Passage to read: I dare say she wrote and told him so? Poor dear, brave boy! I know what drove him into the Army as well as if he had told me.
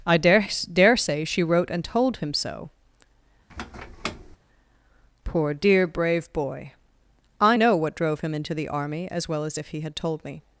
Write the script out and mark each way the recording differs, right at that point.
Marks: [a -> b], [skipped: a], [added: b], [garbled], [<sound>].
I dare [added: dare] say she wrote and told him so? [squeak] Poor dear, brave boy! I know what drove him into the Army as well as if he had told me.